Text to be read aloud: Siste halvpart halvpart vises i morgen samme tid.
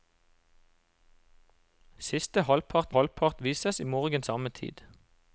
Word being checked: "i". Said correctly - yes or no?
yes